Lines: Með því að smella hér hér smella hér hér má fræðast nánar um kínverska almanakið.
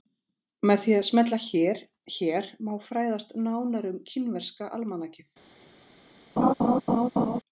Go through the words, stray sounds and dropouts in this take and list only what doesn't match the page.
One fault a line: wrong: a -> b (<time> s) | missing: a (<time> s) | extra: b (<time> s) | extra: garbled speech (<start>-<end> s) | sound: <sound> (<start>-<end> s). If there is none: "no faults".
missing: smella hér hér (2.5 s)
sound: laugh (6.4-7.4 s)